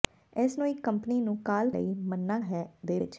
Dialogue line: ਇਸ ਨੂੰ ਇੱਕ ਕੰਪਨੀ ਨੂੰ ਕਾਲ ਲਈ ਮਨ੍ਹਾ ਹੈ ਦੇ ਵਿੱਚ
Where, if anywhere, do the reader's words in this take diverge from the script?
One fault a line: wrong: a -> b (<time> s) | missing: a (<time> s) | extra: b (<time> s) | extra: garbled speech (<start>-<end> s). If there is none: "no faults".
no faults